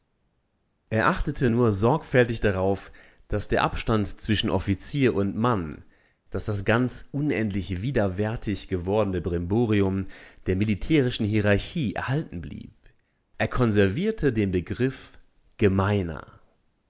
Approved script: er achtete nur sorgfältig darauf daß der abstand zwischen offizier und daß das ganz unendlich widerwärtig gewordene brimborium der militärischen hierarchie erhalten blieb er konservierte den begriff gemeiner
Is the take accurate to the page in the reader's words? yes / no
no